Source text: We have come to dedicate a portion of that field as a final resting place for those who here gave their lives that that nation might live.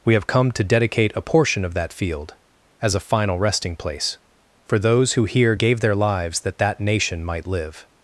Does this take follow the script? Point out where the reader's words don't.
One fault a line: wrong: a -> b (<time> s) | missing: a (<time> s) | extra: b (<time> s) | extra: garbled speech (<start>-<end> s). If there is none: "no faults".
no faults